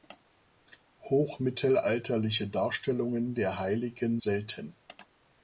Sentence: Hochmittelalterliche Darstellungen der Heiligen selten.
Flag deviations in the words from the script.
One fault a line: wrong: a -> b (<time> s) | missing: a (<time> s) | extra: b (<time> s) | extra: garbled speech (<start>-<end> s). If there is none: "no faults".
no faults